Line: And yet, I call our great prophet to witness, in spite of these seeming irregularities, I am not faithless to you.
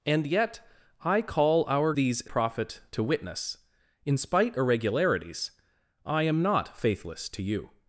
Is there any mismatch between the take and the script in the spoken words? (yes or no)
yes